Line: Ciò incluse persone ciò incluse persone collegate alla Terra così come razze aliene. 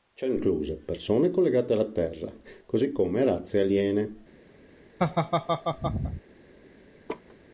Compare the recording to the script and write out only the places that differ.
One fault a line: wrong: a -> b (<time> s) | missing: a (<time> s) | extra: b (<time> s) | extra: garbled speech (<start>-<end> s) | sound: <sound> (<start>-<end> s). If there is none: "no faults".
missing: ciò incluse persone (1.3 s)
sound: laugh (5.0-6.2 s)
sound: laugh (7.1-7.4 s)